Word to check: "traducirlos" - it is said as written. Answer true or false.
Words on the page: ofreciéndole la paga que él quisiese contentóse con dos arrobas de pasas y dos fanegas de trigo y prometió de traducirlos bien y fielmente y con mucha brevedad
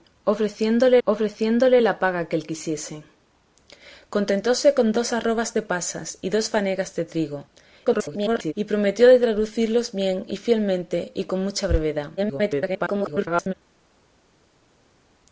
true